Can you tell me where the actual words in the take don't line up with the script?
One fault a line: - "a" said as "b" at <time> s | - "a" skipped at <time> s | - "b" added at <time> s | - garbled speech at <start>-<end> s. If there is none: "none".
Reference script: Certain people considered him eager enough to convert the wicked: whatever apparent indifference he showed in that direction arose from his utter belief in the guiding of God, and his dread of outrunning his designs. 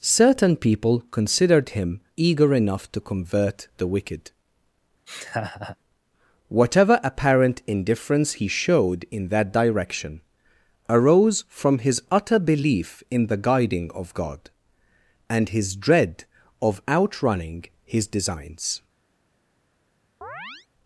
none